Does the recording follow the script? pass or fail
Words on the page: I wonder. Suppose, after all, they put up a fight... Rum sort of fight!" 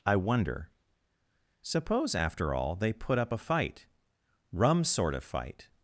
pass